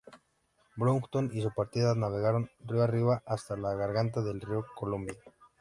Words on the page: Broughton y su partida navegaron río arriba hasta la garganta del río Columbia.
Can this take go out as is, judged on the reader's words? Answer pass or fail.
pass